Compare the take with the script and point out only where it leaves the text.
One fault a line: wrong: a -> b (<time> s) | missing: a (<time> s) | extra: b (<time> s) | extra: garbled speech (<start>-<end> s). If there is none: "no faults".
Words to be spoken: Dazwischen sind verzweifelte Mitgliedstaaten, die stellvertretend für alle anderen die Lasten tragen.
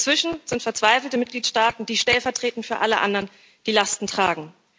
no faults